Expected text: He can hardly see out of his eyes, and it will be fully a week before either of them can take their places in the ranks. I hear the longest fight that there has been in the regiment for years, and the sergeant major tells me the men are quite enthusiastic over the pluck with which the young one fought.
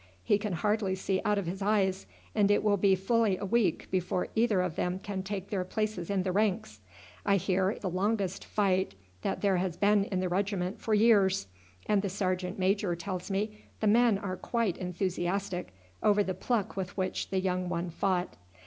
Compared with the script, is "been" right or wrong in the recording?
right